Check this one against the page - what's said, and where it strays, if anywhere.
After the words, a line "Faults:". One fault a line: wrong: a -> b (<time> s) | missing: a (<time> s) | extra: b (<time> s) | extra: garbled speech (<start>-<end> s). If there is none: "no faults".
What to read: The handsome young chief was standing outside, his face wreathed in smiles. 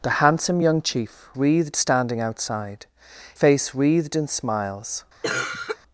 The handsome young chief wreathed standing outside, face wreathed in smiles.
Faults:
wrong: was -> wreathed (1.3 s)
missing: his (2.9 s)